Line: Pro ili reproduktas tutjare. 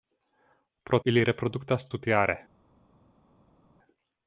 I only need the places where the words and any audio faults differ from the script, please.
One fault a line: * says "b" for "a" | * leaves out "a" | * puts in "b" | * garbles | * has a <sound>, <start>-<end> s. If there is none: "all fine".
all fine